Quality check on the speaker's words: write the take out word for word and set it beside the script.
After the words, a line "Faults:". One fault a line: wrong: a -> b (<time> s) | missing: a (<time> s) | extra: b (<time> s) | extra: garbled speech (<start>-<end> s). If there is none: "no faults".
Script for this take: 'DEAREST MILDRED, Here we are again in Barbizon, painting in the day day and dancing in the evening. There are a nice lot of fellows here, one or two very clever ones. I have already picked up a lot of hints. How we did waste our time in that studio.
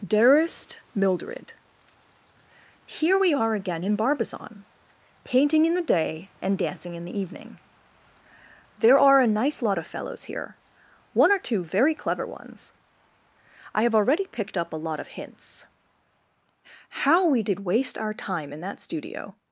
'DEAREST MILDRED, Here we are again in Barbizon, painting in the day and dancing in the evening. There are a nice lot of fellows here, one or two very clever ones. I have already picked up a lot of hints. How we did waste our time in that studio.
Faults:
missing: day (6.3 s)